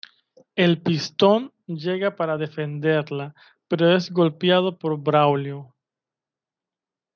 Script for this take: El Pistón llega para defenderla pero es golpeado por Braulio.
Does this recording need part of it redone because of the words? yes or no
no